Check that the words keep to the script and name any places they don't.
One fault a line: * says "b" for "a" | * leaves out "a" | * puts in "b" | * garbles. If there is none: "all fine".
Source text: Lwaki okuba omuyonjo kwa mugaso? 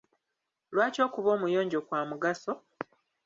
all fine